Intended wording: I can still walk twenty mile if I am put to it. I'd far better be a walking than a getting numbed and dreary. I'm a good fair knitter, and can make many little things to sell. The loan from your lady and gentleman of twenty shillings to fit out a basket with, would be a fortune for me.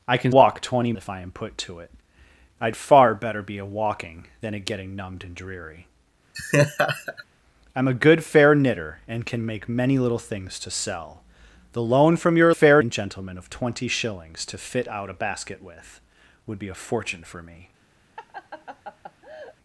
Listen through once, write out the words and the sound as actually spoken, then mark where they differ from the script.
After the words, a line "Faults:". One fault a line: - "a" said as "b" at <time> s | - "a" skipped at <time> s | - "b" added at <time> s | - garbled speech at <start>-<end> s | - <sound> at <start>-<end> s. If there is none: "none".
I can walk twenty if I am put to it. I'd far better be a walking than a getting numbed and dreary. I'm a good fair knitter, and can make many little things to sell. The loan from your fair and gentleman of twenty shillings to fit out a basket with, would be a fortune for me.
Faults:
- "still" skipped at 0.3 s
- "mile" skipped at 0.9 s
- laugh at 6.3-7.2 s
- "lady" said as "fair" at 12.5 s
- laugh at 18.2-19.6 s